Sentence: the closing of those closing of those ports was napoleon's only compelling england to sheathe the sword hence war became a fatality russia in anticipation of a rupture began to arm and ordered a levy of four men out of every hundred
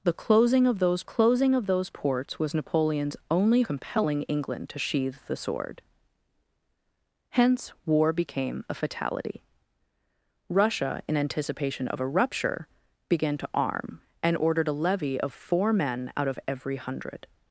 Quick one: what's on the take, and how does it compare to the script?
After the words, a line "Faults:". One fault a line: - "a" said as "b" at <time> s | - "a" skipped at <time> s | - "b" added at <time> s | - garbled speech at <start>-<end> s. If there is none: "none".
the closing of those closing of those ports was napoleon's only compelling england to sheathe the sword hence war became a fatality russia in anticipation of a rupture began to arm and ordered a levy of four men out of every hundred
Faults:
none